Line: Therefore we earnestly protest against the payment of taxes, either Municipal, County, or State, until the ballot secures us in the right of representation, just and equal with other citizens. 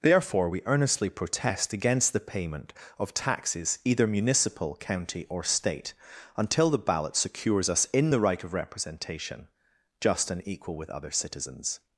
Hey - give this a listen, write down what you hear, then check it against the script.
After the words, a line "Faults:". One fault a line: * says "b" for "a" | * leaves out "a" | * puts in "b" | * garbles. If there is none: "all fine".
Therefore we earnestly protest against the payment of taxes, either Municipal, County, or State, until the ballot secures us in the right of representation, just and equal with other citizens.
Faults:
all fine